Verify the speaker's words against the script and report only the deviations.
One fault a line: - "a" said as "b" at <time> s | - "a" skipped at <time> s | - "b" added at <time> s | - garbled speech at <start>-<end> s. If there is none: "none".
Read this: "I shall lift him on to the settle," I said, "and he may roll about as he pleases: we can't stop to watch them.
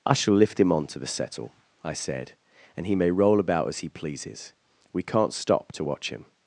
- "them" said as "him" at 6.1 s